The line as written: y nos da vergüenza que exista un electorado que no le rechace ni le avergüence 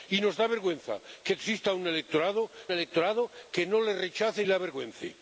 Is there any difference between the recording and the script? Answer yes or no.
yes